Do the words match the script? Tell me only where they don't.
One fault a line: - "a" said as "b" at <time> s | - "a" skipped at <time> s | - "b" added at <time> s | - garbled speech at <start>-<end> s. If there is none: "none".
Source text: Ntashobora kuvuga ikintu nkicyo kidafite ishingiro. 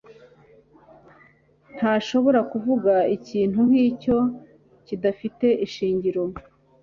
none